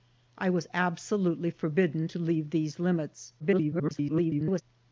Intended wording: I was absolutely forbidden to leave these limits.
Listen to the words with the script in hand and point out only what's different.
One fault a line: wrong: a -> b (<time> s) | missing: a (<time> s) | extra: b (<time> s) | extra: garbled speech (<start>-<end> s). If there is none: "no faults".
extra: garbled speech (3.4-4.6 s)